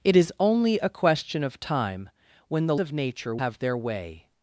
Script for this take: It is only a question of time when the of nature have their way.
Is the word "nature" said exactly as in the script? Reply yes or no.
yes